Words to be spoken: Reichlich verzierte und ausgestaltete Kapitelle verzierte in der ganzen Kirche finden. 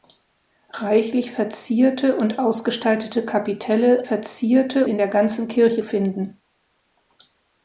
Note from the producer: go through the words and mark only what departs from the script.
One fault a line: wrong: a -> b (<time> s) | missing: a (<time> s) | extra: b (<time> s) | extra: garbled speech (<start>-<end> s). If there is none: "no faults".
no faults